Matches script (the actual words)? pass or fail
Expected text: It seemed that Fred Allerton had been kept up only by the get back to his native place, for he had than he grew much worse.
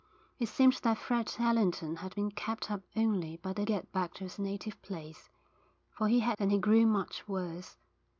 pass